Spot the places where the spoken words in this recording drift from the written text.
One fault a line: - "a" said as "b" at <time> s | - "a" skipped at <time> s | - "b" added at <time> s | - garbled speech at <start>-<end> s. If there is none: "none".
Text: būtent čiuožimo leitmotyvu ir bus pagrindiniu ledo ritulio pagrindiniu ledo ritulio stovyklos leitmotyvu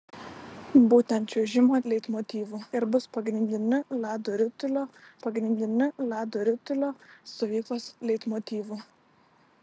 none